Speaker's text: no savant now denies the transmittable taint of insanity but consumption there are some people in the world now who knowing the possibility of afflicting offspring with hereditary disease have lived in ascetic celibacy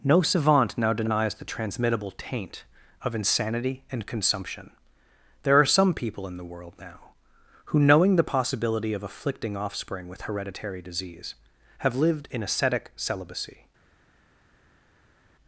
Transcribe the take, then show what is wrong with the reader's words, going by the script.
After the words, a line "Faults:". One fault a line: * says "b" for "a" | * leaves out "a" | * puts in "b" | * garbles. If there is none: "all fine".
no savant now denies the transmittable taint of insanity and consumption there are some people in the world now who knowing the possibility of afflicting offspring with hereditary disease have lived in ascetic celibacy
Faults:
* says "and" for "but"